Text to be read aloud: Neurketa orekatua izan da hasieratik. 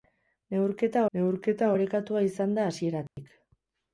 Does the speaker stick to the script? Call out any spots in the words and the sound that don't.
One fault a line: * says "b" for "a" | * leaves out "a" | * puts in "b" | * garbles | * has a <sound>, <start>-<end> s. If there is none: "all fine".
* puts in "neurketa"
* has a dropout, 3.1-3.2 s